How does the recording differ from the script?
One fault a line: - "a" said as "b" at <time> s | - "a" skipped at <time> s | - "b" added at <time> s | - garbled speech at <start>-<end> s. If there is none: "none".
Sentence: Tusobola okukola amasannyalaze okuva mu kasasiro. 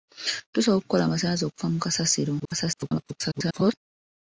- garbled speech at 2.4-3.7 s